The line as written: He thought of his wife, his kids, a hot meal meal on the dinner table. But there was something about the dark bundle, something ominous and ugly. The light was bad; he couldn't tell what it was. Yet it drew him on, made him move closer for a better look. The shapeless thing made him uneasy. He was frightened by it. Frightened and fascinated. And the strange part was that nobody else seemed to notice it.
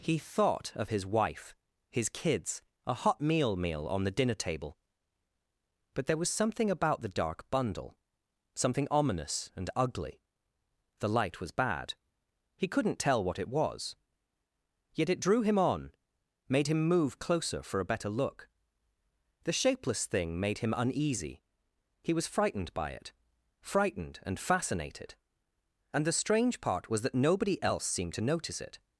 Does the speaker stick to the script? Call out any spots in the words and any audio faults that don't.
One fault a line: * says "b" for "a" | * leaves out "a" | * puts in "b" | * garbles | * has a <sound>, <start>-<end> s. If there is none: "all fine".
all fine